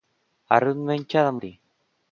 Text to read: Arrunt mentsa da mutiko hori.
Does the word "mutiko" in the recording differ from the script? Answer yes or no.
yes